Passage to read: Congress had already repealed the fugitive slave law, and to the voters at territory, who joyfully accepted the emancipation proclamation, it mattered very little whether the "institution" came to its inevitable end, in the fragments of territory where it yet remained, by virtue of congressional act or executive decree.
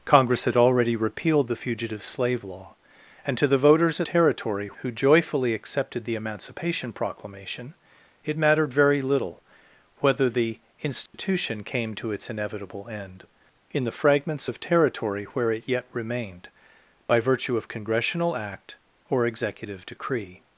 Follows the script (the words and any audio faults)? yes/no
no